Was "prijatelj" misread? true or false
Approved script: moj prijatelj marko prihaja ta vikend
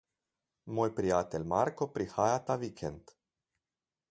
false